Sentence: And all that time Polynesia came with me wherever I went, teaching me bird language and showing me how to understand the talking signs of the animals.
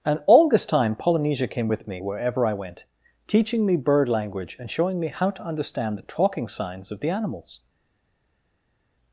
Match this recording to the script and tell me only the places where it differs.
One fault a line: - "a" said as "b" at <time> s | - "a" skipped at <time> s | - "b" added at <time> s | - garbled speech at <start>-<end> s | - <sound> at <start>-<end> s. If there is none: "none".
- "that" said as "this" at 0.5 s